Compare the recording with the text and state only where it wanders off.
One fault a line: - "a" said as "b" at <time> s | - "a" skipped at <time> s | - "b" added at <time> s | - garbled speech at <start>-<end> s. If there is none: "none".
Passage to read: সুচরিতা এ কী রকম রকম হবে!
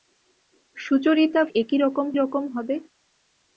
none